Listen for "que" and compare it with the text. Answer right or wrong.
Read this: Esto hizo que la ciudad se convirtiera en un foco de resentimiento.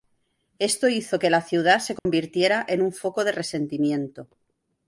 right